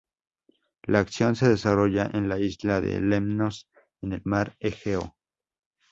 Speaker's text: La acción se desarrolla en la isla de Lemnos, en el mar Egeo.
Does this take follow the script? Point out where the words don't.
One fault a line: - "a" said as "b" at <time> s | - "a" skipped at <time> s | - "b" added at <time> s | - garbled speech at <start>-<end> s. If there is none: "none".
none